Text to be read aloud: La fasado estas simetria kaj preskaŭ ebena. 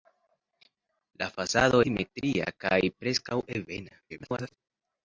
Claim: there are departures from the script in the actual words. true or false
true